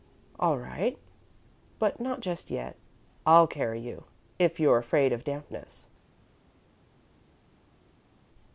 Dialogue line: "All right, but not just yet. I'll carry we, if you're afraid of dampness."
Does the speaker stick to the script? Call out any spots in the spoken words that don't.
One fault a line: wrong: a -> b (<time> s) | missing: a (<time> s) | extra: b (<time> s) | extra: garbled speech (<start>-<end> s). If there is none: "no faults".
wrong: we -> you (3.8 s)